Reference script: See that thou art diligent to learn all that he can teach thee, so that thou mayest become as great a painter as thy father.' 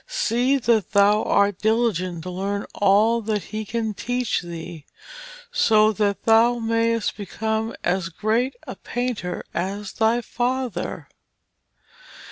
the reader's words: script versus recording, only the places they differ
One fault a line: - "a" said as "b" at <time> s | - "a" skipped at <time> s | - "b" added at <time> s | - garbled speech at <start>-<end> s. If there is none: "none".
none